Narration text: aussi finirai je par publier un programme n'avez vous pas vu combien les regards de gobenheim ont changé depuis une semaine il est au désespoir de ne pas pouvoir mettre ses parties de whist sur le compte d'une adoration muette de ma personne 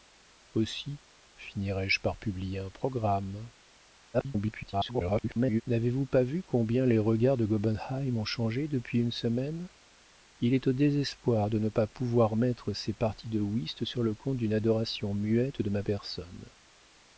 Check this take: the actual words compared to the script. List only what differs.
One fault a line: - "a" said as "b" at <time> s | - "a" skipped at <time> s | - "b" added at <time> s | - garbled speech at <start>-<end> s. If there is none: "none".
- garbled speech at 4.1-5.6 s